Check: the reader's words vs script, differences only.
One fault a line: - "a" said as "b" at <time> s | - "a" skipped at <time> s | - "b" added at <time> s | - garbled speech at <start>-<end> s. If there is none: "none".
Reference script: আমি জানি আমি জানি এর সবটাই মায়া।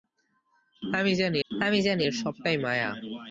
none